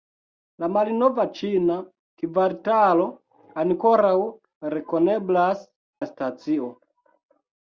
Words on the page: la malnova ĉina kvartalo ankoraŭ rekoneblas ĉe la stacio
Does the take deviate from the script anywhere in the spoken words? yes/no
yes